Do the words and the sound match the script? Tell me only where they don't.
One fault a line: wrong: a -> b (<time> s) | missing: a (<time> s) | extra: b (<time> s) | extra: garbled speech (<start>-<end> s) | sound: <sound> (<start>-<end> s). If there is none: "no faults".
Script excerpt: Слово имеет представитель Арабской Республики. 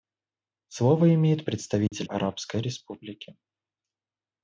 sound: dropout (1.9-1.9 s)